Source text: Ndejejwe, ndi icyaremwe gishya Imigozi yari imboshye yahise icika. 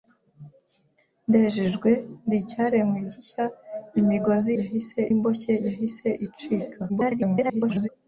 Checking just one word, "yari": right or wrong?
wrong